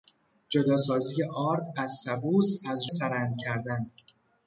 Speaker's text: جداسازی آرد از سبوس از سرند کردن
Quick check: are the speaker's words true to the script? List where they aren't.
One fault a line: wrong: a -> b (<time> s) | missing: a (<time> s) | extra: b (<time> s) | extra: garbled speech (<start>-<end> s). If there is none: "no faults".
no faults